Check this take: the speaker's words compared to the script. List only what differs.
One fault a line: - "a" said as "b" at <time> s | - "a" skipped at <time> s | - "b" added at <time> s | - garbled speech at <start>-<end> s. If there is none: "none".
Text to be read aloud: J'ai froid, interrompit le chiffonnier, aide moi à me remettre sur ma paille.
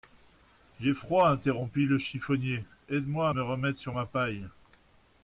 none